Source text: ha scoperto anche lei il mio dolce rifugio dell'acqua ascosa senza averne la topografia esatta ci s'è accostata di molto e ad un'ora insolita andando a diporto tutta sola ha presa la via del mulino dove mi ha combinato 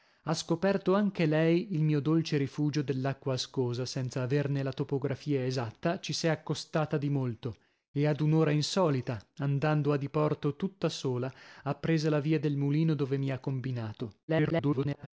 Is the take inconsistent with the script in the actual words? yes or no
yes